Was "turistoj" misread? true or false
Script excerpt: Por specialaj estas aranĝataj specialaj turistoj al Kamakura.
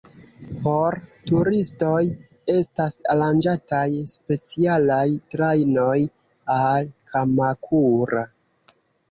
true